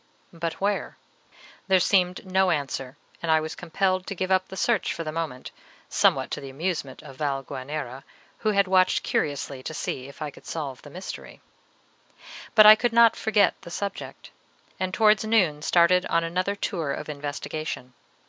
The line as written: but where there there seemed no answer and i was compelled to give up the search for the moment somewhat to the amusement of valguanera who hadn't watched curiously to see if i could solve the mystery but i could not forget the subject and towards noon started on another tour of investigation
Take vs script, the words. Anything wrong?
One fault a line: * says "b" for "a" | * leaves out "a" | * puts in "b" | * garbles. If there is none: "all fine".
* leaves out "there"
* says "had" for "hadn't"